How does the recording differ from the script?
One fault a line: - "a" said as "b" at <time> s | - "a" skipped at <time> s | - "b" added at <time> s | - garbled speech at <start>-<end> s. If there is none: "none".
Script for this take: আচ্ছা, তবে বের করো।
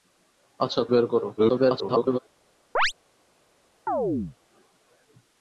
- "তবে" skipped at 0.8 s
- garbled speech at 1.4-2.2 s